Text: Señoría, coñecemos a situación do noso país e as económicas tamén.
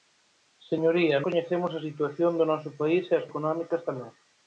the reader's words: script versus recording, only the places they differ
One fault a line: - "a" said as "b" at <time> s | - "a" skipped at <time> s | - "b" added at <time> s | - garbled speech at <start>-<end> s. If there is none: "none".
none